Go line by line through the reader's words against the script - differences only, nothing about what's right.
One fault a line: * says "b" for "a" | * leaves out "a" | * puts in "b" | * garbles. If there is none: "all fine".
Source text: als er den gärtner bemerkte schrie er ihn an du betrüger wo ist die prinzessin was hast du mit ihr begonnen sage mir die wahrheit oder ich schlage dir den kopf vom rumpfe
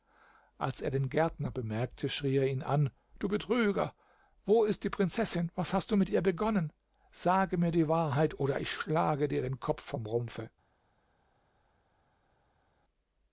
all fine